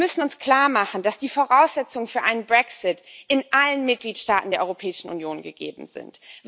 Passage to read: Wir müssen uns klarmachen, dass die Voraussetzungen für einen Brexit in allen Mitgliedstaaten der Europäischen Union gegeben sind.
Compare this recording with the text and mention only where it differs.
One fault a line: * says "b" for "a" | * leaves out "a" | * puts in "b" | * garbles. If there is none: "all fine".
all fine